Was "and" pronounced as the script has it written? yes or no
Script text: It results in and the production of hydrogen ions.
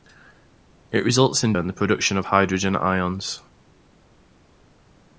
yes